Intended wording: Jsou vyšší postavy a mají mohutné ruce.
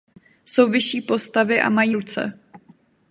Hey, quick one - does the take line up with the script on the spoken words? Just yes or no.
no